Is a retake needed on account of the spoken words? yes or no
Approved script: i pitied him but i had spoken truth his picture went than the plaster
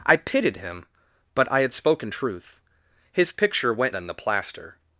no